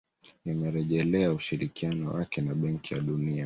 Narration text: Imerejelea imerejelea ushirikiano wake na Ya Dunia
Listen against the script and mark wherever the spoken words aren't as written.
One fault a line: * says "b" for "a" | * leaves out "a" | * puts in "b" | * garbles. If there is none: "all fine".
* leaves out "imerejelea"
* puts in "Benki"